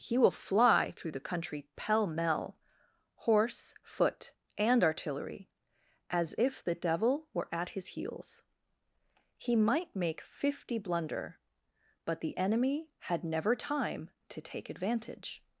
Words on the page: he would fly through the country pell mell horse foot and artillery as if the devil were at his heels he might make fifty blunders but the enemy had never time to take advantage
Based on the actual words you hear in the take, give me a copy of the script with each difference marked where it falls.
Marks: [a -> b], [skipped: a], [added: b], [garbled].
he [would -> will] fly through the country pell mell horse foot and artillery as if the devil were at his heels he might make fifty [blunders -> blunder] but the enemy had never time to take advantage